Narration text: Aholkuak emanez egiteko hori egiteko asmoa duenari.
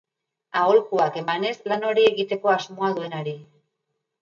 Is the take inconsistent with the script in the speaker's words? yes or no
yes